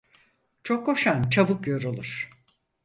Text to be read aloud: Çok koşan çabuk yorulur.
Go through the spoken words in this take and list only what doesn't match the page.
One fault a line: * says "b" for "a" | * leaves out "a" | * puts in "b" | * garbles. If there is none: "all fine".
all fine